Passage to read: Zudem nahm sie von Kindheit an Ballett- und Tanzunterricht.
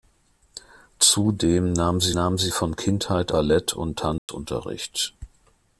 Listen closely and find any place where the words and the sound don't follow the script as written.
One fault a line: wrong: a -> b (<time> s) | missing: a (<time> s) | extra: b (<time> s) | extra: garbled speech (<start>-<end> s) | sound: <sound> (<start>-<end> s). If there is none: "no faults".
extra: nahm sie (2.1 s)
missing: an (3.3 s)
sound: dropout (4.2-4.3 s)